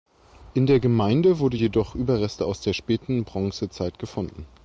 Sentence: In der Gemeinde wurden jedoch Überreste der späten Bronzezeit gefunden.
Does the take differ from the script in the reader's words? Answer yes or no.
yes